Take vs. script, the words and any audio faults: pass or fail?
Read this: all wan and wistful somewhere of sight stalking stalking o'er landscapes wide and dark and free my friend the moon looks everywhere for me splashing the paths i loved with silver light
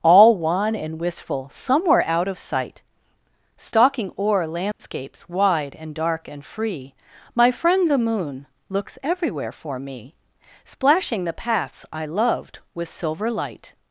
fail